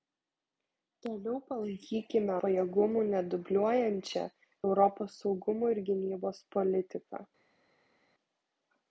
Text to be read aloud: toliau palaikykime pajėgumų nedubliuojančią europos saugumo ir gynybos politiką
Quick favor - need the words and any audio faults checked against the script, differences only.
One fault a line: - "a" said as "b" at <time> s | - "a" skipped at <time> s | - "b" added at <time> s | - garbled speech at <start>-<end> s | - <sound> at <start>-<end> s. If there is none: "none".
none